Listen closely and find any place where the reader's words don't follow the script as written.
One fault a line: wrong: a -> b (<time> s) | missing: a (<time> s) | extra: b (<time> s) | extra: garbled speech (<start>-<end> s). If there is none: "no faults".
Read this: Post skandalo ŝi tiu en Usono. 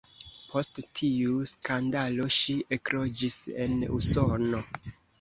extra: tiu (1.0 s)
wrong: tiu -> ekloĝis (2.8 s)